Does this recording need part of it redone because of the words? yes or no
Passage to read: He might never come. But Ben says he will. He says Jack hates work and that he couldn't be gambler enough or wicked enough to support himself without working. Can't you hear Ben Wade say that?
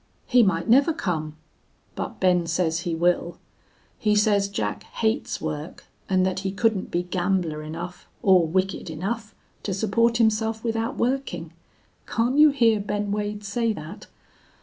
no